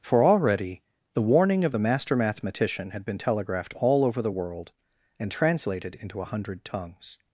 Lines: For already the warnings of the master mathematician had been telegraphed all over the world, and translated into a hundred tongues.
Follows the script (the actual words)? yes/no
no